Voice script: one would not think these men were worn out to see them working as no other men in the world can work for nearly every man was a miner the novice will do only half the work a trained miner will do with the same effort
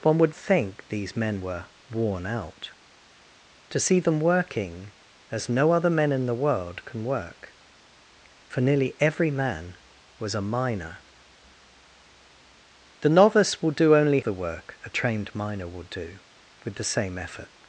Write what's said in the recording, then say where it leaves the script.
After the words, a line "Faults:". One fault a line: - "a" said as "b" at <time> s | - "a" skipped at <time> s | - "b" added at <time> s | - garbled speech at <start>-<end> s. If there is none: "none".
one would think these men were worn out to see them working as no other men in the world can work for nearly every man was a miner the novice will do only the work a trained miner will do with the same effort
Faults:
- "not" skipped at 0.3 s
- "half" skipped at 14.2 s